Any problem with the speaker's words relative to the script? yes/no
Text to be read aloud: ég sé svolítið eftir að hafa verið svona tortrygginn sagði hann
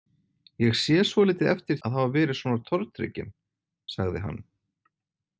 no